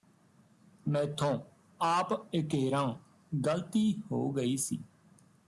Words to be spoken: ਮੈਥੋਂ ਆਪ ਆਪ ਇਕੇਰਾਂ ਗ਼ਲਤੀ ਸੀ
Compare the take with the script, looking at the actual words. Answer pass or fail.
fail